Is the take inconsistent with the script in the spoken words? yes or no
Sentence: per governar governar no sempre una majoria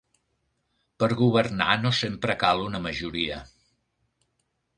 yes